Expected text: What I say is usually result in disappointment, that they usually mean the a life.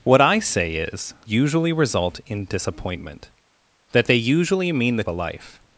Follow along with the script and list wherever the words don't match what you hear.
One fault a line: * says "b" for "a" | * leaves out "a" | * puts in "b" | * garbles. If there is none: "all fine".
all fine